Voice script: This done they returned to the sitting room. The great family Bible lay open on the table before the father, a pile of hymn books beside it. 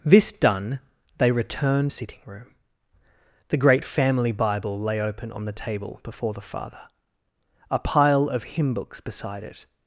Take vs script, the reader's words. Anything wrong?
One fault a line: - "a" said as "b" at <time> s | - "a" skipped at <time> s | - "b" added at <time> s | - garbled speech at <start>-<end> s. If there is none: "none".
- "to the" skipped at 1.9 s